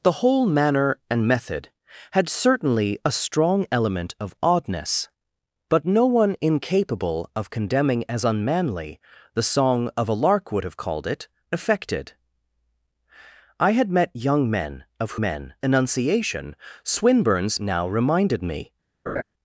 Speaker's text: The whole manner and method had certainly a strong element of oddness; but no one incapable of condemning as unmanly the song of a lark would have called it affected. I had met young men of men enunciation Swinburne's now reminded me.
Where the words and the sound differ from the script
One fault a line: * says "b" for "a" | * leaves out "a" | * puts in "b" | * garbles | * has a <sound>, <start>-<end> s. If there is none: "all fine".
* has a laugh, 19.1-19.2 s